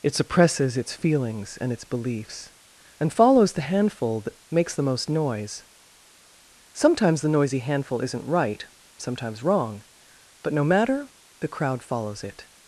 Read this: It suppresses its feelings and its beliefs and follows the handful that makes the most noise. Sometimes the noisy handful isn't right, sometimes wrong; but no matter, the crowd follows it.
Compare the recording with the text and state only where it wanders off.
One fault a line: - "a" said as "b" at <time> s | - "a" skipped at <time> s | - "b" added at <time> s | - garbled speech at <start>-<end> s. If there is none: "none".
none